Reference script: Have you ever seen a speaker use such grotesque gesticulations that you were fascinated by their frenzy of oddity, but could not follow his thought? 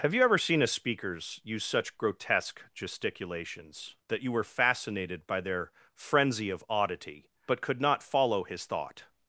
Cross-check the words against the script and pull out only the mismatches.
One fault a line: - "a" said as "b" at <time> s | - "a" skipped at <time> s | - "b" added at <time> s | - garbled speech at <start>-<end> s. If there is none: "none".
- "speaker" said as "speakers" at 0.7 s